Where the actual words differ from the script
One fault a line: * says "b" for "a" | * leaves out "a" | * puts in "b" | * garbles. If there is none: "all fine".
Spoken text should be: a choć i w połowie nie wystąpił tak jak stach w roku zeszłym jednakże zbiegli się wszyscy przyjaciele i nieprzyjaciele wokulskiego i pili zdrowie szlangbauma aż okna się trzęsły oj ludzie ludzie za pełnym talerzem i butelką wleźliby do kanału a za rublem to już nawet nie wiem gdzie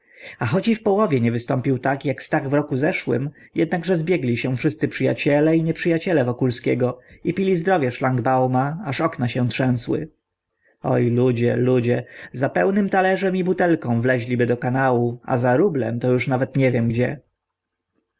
all fine